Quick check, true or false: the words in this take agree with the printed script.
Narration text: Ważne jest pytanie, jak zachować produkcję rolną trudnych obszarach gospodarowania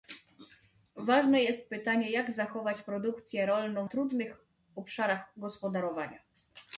true